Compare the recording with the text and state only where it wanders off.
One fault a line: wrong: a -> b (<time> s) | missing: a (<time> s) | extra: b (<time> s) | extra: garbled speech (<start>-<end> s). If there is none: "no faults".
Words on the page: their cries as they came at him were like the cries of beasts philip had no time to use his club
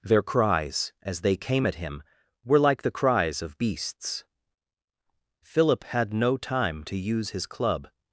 no faults